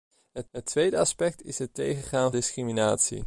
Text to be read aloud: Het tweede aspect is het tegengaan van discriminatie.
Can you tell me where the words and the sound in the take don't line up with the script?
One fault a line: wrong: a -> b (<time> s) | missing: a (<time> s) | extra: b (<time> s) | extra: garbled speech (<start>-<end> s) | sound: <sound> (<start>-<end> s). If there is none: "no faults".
extra: het (0.5 s)
missing: van (2.3 s)